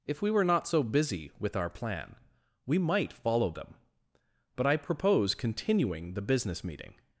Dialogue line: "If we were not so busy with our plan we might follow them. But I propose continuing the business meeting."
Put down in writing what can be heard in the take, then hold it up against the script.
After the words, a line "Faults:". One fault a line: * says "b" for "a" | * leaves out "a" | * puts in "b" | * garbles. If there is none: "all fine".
"If we were not so busy with our plan we might follow them. But I propose continuing the business meeting."
Faults:
all fine